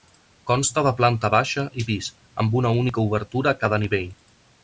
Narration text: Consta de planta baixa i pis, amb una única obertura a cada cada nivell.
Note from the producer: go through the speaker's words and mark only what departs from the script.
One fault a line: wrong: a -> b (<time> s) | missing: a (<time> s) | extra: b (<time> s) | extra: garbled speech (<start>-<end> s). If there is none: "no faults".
missing: cada (3.8 s)